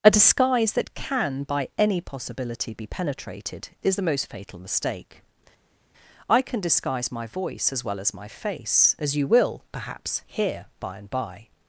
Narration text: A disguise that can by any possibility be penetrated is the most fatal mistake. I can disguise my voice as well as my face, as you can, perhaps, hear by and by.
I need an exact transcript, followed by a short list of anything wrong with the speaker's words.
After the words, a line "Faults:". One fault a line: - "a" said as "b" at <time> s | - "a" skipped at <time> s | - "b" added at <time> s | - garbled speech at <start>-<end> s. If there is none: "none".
A disguise that can by any possibility be penetrated is the most fatal mistake. I can disguise my voice as well as my face, as you will, perhaps, hear by and by.
Faults:
- "can" said as "will" at 9.3 s